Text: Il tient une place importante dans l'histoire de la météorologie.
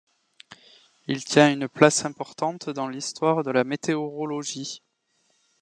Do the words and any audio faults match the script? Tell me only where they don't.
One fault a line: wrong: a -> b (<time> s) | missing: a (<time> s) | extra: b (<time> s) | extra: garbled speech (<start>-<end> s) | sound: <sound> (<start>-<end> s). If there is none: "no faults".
no faults